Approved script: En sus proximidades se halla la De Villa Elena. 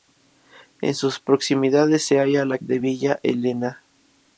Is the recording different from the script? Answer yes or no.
no